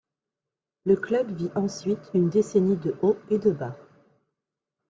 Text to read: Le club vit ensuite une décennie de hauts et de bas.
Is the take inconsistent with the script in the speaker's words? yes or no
no